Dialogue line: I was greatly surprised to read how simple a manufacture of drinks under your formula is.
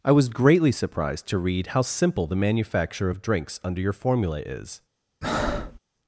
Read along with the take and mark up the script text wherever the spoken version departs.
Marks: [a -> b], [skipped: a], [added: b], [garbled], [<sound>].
I was greatly surprised to read how simple [a -> the] manufacture of drinks under your formula is. [breath]